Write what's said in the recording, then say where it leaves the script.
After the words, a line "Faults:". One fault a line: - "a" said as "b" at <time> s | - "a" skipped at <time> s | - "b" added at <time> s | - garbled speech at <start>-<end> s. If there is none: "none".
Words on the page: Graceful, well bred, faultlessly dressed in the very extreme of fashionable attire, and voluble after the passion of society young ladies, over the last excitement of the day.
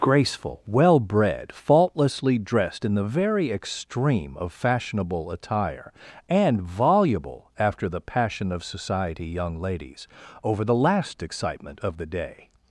Graceful, well bred, faultlessly dressed in the very extreme of fashionable attire, and voluble after the passion of society young ladies, over the last excitement of the day.
Faults:
none